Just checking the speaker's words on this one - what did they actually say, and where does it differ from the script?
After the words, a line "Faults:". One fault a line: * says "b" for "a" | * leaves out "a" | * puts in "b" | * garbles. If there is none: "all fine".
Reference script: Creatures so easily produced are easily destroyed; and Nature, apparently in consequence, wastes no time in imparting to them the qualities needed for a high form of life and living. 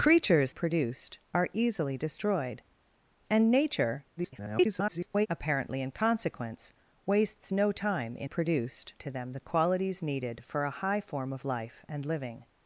Creatures produced are easily destroyed; and Nature, [garbled] apparently in consequence, wastes no time in produced to them the qualities needed for a high form of life and living.
Faults:
* leaves out "so easily"
* garbles
* says "produced" for "imparting"